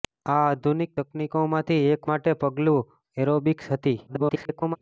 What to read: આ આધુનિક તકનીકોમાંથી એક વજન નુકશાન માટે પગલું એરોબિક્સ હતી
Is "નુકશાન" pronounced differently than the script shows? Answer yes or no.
yes